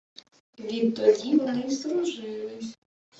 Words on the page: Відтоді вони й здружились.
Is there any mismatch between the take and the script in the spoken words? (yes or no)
no